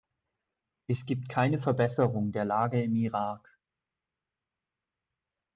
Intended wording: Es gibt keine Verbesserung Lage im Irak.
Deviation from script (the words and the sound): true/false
true